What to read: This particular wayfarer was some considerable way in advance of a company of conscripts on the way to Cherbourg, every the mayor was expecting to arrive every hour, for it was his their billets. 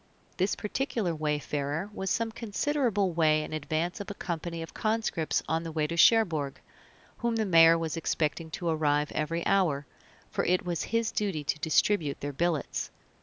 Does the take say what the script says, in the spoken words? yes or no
no